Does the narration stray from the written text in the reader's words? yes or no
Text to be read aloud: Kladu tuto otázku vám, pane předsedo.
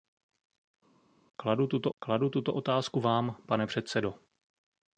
yes